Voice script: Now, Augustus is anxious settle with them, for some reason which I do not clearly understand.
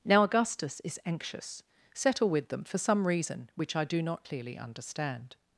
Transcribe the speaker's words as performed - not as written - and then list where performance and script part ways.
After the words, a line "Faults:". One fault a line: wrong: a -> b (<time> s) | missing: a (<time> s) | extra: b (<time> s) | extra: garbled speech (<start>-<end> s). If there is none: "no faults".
Now, Augustus is anxious settle with them, for some reason which I do not clearly understand.
Faults:
no faults